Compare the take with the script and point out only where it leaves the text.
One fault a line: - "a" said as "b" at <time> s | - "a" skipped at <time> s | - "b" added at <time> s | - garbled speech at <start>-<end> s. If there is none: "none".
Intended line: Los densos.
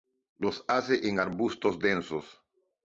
- "hace en arbustos" added at 0.7 s